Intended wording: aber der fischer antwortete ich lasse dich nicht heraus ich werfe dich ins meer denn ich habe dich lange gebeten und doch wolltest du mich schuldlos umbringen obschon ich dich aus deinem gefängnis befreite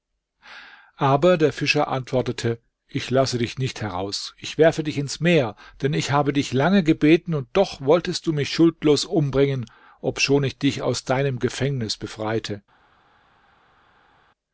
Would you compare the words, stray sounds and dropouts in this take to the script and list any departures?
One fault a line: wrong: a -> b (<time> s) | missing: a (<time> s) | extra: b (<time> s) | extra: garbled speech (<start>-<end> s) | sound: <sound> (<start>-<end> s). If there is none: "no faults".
no faults